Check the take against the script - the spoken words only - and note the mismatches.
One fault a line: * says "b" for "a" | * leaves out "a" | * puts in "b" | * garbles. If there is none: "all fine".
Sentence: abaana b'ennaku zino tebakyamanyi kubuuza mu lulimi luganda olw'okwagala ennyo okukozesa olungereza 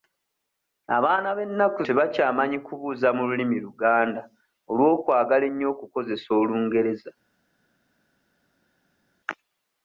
* leaves out "zino"